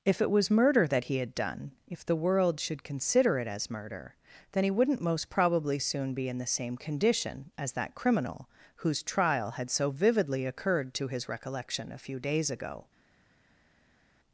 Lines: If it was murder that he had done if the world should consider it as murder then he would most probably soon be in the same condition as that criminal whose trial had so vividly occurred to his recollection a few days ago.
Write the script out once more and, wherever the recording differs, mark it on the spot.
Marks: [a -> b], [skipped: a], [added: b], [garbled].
If it was murder that he had done if the world should consider it as murder then he [would -> wouldn't] most probably soon be in the same condition as that criminal whose trial had so vividly occurred to his recollection a few days ago.